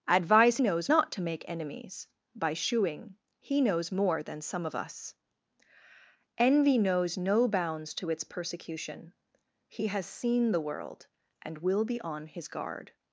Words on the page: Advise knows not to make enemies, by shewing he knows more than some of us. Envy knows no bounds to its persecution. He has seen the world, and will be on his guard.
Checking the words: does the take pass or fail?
pass